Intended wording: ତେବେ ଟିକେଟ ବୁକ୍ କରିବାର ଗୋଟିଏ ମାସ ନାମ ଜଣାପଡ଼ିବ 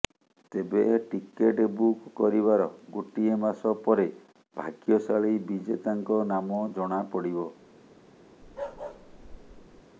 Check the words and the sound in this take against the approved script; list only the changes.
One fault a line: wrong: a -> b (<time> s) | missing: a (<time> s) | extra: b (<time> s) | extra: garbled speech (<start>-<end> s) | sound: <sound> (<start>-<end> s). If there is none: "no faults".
extra: ପରେ ଭାଗ୍ୟଶାଳୀ ବିଜେତାଙ୍କ (3.8 s)
sound: bark (8.4-9.8 s)